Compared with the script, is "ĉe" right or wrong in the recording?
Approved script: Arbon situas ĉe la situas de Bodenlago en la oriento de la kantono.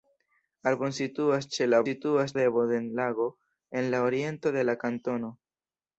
right